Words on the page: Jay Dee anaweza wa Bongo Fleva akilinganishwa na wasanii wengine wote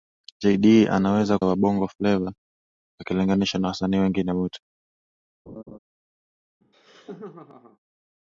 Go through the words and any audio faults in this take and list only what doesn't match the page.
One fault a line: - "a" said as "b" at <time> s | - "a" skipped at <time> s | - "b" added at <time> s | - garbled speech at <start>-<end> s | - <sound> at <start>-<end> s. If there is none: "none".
- laugh at 5.5-5.8 s
- laugh at 6.6-7.8 s